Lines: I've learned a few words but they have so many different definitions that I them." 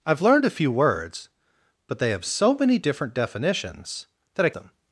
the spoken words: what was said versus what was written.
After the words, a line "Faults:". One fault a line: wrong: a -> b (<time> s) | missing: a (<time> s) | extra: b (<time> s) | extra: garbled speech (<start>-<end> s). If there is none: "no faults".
I've learned a few words but they have so many different definitions that I them."
Faults:
no faults